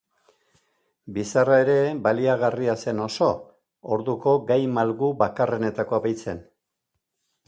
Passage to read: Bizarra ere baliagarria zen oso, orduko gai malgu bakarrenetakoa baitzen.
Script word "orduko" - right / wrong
right